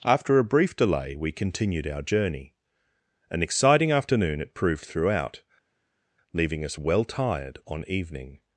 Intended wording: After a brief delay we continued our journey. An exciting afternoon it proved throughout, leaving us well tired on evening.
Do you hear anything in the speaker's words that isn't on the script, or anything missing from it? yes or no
no